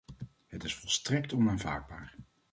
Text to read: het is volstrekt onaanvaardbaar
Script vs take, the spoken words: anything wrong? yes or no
no